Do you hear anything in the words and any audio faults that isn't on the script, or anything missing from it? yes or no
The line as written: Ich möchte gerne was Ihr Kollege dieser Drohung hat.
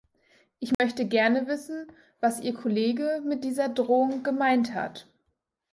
yes